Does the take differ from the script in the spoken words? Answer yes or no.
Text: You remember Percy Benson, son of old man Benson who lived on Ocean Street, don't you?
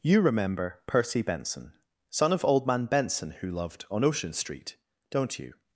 yes